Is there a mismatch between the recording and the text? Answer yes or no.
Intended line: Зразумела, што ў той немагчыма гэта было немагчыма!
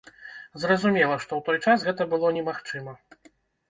yes